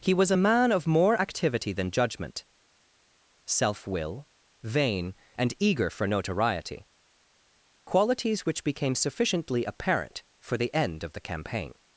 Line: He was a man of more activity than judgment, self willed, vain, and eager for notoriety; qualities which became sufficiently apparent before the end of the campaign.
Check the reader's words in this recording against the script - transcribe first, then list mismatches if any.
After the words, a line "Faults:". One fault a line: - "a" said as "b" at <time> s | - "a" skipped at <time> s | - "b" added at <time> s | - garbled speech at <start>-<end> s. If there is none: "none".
He was a man of more activity than judgment, self will, vain, and eager for notoriety; qualities which became sufficiently apparent for the end of the campaign.
Faults:
- "willed" said as "will" at 3.9 s
- "before" said as "for" at 10.4 s